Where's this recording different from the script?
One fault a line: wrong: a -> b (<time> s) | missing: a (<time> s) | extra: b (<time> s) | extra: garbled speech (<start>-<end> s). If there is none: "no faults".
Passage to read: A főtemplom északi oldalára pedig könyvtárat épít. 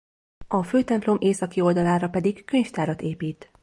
no faults